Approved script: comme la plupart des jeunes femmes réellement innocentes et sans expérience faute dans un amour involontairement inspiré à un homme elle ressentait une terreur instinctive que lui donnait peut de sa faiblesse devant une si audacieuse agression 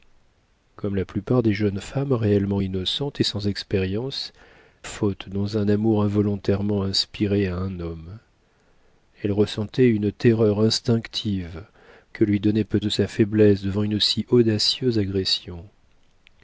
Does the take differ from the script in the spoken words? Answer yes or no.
no